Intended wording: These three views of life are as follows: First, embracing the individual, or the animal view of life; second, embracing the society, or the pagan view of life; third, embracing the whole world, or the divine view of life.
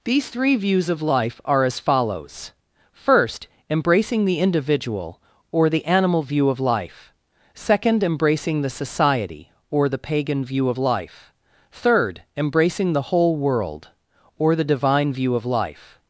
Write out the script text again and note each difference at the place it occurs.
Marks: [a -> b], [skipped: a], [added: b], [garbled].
These three views of life are as follows: First, embracing the individual, or the animal view of life; second, embracing the society, or the pagan view of life; third, embracing the whole world, or the divine view of life.